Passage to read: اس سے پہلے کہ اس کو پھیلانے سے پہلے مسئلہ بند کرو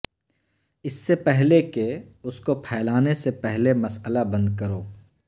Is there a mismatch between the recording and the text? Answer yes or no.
no